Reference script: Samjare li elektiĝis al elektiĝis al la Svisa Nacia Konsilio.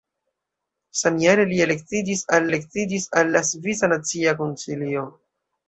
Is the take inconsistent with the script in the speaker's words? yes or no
no